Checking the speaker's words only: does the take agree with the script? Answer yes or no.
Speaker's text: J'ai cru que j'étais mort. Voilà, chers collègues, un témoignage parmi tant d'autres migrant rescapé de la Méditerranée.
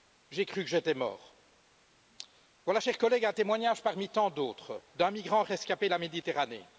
no